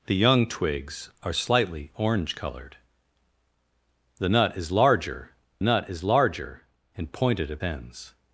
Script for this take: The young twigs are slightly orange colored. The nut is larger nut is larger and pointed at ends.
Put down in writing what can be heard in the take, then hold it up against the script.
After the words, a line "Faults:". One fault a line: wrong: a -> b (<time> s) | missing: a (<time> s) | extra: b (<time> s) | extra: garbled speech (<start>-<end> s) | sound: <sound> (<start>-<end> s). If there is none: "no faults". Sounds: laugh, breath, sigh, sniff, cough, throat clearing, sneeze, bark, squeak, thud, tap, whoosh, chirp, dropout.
The young twigs are slightly orange colored. The nut is larger nut is larger and pointed at ends.
Faults:
no faults